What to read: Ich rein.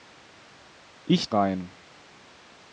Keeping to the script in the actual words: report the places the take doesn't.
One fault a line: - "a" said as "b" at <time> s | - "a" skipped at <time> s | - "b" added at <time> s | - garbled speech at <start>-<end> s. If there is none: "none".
none